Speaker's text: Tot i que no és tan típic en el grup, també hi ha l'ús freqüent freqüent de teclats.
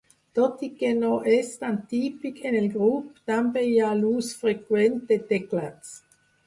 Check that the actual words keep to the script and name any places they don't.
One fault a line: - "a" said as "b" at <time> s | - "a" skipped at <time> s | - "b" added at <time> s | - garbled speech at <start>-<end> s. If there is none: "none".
- "freqüent" skipped at 5.0 s